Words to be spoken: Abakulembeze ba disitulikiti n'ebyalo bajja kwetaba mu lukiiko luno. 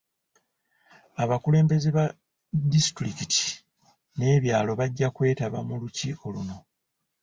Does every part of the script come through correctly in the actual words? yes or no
yes